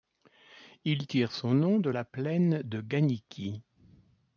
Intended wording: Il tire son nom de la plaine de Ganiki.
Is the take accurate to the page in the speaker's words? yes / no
yes